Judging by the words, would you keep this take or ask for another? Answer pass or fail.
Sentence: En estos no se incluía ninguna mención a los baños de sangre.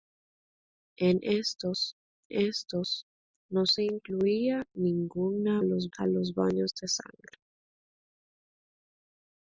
fail